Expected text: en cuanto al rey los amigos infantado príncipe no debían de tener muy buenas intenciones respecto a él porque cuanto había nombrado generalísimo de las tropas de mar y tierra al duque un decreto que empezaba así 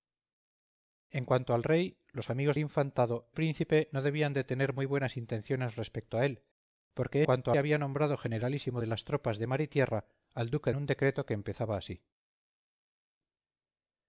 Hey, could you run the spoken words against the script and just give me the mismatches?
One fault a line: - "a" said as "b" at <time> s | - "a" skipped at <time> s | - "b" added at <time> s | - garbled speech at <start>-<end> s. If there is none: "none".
none